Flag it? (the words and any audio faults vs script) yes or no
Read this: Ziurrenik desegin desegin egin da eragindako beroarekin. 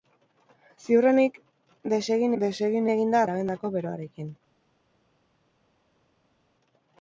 no